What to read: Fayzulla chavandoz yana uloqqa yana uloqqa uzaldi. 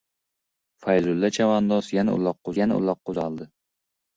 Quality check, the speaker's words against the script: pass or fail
pass